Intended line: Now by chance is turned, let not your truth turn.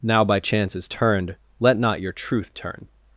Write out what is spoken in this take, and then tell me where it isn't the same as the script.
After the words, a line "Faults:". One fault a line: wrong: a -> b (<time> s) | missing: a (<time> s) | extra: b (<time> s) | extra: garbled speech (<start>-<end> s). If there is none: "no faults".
Now by chance is turned, let not your truth turn.
Faults:
no faults